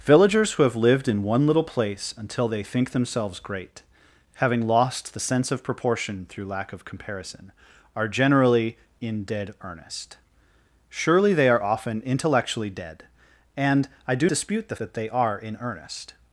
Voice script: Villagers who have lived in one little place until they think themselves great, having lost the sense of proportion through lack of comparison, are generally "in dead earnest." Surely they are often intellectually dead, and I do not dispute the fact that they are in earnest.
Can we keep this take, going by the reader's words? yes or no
no